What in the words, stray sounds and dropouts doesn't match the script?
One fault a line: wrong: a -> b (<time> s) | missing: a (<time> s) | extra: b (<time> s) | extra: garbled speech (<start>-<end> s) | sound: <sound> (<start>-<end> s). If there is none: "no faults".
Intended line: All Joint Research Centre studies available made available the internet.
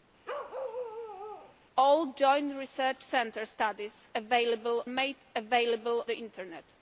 sound: bark (0.2-1.6 s)